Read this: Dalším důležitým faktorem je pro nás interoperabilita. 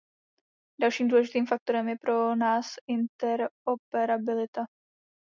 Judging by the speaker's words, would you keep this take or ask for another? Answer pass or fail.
pass